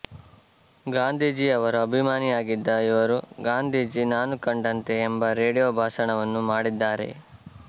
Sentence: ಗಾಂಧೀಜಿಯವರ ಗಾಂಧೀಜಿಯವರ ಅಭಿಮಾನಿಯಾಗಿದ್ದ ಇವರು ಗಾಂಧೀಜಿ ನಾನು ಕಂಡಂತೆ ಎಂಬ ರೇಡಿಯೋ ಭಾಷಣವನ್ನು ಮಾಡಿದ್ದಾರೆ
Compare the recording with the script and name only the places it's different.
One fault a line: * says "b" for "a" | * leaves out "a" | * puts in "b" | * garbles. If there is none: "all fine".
* leaves out "ಗಾಂಧೀಜಿಯವರ"